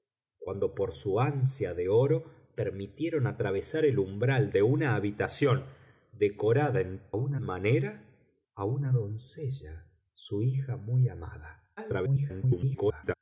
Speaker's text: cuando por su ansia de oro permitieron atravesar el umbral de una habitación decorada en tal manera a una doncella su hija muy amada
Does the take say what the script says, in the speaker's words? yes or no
no